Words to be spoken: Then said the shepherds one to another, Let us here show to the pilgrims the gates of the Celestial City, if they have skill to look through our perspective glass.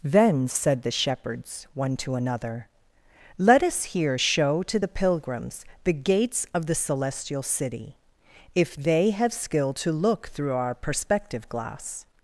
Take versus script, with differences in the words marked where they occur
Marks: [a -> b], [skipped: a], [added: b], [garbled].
Then said the shepherds one to another, Let us here show to the pilgrims the gates of the Celestial City, if they have skill to look through our perspective glass.